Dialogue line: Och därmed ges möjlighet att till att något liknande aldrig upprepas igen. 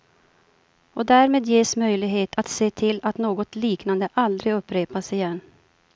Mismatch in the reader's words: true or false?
true